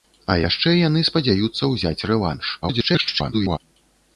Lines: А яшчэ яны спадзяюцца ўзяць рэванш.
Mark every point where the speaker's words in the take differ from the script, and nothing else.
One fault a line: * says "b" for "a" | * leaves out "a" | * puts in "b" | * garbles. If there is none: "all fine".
* garbles